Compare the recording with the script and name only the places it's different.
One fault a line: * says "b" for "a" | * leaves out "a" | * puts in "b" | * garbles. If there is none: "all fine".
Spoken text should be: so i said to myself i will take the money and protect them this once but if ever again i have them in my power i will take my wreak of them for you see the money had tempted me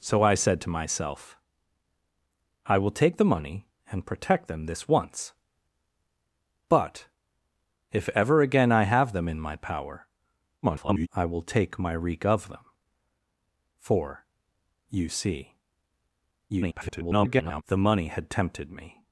* garbles
* garbles